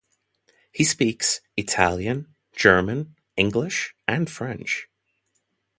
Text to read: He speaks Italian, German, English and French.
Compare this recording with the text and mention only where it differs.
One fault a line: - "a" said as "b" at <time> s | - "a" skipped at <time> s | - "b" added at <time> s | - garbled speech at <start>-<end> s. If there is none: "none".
none